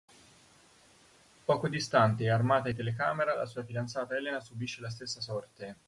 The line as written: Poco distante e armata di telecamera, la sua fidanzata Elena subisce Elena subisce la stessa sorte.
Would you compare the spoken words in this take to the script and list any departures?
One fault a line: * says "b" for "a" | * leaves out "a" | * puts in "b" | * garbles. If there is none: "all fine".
* leaves out "Elena subisce"